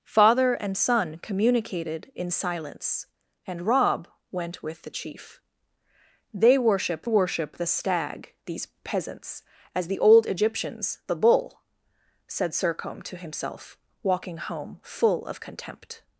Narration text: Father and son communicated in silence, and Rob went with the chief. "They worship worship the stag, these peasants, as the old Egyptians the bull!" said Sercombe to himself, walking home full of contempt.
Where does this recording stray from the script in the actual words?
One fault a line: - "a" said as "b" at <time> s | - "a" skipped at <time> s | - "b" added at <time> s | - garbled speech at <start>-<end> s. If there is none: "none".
none